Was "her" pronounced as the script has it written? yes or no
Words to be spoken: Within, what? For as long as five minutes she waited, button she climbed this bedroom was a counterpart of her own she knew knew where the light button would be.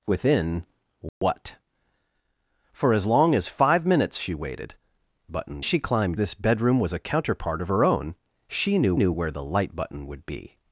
yes